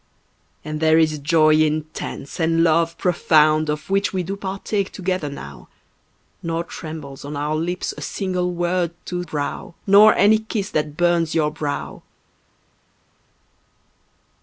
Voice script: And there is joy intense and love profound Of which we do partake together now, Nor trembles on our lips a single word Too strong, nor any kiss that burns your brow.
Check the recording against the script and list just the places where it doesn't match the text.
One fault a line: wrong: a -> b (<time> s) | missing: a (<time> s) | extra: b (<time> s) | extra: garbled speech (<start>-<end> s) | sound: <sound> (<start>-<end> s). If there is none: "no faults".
wrong: strong -> brow (9.2 s)